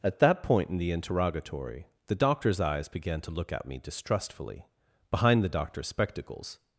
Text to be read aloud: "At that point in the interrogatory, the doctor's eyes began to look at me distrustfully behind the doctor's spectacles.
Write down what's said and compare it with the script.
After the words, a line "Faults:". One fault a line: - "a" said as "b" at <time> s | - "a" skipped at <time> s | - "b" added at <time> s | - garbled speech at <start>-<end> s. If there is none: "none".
"At that point in the interrogatory, the doctor's eyes began to look at me distrustfully behind the doctor's spectacles.
Faults:
none